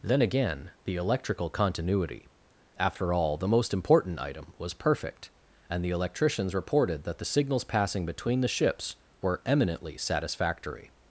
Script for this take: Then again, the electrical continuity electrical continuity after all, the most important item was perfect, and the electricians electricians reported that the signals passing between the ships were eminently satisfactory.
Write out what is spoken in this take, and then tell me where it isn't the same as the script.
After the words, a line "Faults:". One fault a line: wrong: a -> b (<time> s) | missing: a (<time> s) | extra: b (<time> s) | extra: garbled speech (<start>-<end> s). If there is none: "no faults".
Then again, the electrical continuity after all, the most important item was perfect, and the electricians reported that the signals passing between the ships were eminently satisfactory.
Faults:
missing: electrical continuity (2.3 s)
missing: electricians (6.5 s)